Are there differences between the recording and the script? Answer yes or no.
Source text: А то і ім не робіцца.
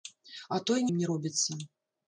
no